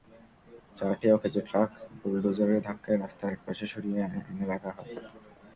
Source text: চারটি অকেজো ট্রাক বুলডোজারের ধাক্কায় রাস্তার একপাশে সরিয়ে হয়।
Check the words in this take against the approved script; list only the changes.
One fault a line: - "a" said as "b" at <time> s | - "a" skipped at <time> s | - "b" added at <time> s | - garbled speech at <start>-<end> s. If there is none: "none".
- "এনে রাখা" added at 4.3 s